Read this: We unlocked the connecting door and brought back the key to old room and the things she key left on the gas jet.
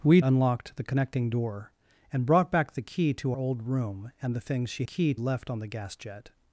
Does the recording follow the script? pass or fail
pass